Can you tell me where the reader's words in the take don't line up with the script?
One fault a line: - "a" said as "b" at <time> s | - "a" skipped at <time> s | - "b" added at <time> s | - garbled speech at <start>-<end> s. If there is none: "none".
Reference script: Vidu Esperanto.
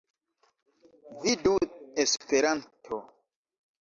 none